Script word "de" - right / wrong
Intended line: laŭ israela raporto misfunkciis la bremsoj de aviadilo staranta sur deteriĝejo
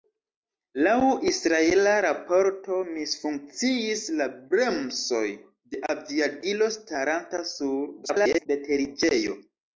right